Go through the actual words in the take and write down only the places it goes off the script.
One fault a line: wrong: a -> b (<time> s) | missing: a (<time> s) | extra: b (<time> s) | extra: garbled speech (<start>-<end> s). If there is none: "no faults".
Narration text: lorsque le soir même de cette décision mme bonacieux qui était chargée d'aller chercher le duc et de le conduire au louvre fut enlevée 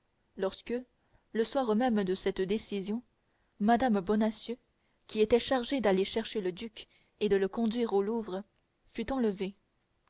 no faults